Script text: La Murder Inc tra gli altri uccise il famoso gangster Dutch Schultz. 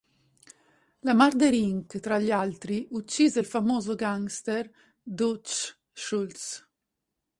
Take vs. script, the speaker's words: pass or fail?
pass